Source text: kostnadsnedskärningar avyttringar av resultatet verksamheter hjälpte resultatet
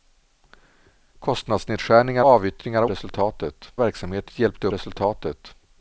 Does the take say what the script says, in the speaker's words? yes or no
yes